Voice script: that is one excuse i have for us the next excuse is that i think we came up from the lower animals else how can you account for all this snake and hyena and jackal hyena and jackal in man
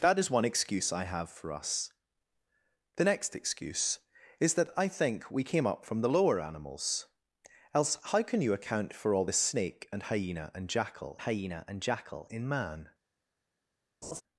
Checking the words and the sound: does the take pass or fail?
fail